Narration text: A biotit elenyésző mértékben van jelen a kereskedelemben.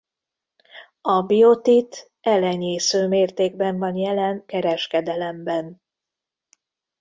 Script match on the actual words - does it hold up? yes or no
no